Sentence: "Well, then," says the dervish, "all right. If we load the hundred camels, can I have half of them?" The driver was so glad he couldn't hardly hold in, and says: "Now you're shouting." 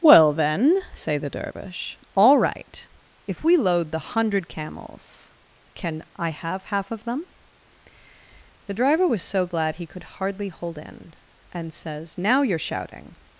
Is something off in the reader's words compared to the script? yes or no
yes